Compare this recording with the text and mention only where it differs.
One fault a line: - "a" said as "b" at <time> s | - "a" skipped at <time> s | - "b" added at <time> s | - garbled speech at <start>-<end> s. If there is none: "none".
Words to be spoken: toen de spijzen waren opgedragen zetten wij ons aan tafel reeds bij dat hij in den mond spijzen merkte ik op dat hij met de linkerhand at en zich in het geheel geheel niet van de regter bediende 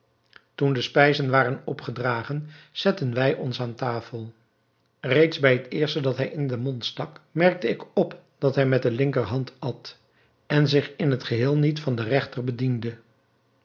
- "het eerste" added at 5.5 s
- "spijzen" said as "stak" at 6.8 s
- "geheel" skipped at 11.6 s